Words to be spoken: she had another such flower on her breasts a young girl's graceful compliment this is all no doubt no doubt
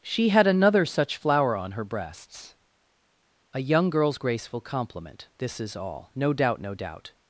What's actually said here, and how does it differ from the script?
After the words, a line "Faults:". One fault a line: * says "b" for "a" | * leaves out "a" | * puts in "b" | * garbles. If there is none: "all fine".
she had another such flower on her breasts a young girl's graceful compliment this is all no doubt no doubt
Faults:
all fine